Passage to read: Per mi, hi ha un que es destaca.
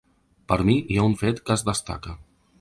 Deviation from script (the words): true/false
true